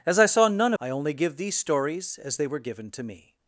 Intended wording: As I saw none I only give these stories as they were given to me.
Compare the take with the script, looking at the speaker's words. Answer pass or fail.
pass